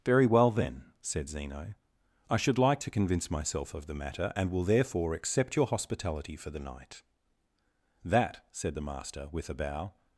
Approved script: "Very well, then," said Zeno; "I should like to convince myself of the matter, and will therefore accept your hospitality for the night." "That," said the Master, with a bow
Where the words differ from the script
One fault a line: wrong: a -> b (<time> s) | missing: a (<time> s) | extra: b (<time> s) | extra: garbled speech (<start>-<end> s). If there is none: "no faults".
no faults